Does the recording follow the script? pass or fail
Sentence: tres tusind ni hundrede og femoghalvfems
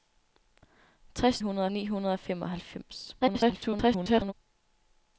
fail